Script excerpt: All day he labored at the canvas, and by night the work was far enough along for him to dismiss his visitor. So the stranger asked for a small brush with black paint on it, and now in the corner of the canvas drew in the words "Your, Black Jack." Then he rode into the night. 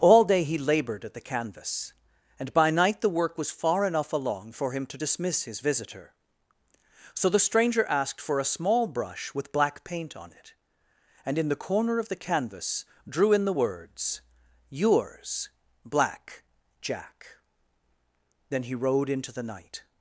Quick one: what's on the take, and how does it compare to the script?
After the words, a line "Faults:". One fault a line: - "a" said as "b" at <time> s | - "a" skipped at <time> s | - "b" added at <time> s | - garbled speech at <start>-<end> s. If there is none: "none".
All day he labored at the canvas, and by night the work was far enough along for him to dismiss his visitor. So the stranger asked for a small brush with black paint on it, and in the corner of the canvas drew in the words "Yours, Black Jack." Then he rode into the night.
Faults:
- "now" skipped at 11.4 s
- "Your" said as "Yours" at 14.7 s